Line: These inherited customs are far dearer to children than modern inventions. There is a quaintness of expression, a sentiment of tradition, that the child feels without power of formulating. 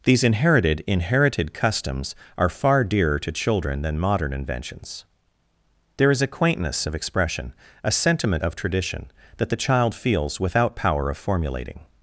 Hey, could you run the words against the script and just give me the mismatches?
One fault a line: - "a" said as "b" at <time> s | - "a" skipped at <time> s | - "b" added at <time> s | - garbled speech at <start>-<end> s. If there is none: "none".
- "inherited" added at 0.9 s